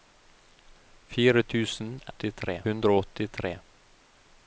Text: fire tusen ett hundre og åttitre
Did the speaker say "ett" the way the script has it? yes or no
no